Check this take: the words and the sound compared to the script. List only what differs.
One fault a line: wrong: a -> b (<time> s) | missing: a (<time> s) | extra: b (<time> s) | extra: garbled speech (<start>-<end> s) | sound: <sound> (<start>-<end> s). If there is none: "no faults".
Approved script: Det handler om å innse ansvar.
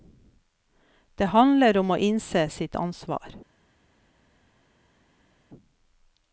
extra: sitt (2.5 s)